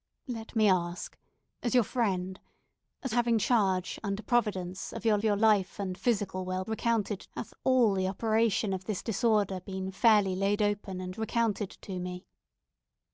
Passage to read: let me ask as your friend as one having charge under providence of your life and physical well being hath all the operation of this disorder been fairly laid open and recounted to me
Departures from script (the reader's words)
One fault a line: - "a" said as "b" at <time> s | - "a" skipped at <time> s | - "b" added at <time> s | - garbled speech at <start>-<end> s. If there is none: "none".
- "one" skipped at 3.1 s
- "your" added at 5.2 s
- "being" said as "recounted" at 6.7 s